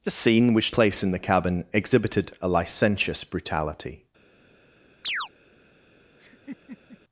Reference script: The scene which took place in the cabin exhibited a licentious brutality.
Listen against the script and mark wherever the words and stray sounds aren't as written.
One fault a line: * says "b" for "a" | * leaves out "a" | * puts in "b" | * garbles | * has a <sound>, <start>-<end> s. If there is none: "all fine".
* leaves out "took"
* has a chirp, 5.0-5.3 s
* has a laugh, 6.2-7.0 s